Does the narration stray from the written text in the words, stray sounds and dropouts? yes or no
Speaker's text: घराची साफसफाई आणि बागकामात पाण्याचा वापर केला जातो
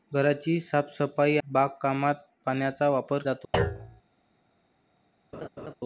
yes